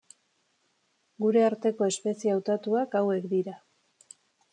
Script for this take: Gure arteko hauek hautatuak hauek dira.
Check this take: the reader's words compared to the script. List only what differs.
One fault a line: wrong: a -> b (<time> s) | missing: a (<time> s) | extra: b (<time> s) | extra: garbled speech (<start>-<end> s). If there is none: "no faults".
wrong: hauek -> espezie (1.9 s)